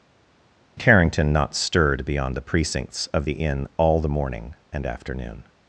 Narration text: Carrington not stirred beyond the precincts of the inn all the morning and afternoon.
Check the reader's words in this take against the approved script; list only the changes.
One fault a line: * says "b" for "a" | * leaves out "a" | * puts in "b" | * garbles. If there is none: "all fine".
all fine